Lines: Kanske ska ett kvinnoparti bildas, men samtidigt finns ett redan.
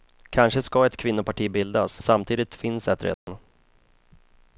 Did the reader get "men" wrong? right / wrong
wrong